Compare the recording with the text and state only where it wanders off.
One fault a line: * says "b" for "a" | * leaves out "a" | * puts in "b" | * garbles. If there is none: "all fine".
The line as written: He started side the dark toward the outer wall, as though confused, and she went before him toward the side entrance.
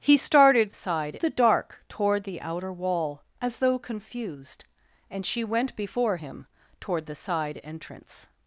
all fine